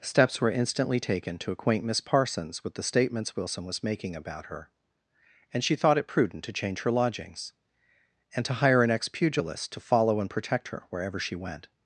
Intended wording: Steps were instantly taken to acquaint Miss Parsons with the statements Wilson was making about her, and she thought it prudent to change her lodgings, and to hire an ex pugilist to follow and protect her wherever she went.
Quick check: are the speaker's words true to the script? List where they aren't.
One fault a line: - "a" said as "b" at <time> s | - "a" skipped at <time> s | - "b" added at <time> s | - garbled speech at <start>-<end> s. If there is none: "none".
none